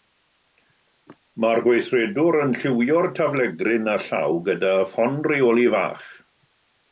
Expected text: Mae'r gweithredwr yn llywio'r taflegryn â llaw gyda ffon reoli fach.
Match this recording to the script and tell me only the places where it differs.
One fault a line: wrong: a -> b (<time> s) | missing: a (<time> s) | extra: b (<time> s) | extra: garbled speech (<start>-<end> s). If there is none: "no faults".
no faults